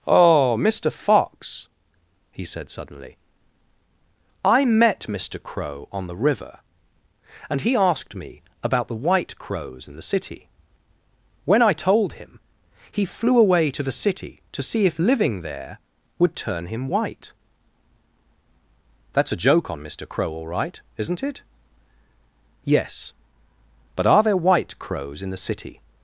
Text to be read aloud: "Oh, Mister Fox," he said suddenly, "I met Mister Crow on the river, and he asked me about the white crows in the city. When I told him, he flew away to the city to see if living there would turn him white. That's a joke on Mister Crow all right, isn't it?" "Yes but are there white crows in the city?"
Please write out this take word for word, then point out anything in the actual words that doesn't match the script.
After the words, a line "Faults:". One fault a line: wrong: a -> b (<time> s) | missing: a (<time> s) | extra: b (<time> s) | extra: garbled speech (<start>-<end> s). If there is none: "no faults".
"Oh, Mister Fox," he said suddenly, "I met Mister Crow on the river, and he asked me about the white crows in the city. When I told him, he flew away to the city to see if living there would turn him white. That's a joke on Mister Crow all right, isn't it?" "Yes but are there white crows in the city?"
Faults:
no faults